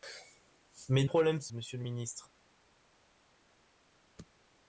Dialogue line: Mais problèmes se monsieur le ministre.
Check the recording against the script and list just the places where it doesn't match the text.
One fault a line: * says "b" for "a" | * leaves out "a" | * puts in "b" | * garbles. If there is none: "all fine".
all fine